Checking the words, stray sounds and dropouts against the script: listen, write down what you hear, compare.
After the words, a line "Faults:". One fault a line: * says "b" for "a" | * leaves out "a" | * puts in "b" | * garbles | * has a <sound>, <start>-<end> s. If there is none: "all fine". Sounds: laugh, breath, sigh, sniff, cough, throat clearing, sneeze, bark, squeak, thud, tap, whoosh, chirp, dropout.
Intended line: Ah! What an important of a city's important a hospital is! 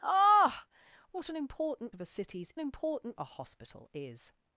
Ah! What an important of a city's important a hospital is!
Faults:
all fine